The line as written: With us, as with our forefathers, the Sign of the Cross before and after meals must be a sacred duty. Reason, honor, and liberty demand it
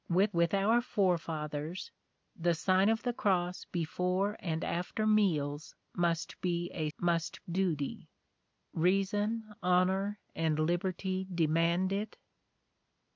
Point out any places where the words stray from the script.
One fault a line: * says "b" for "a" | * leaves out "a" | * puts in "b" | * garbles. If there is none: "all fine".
* leaves out "us as"
* says "must" for "sacred"